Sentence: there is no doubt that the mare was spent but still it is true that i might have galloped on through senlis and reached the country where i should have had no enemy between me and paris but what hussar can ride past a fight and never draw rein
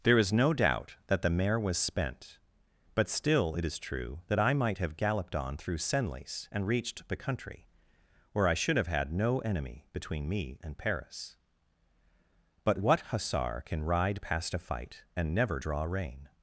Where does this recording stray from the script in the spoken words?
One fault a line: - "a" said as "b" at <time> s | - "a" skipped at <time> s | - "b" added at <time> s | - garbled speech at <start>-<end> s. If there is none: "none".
none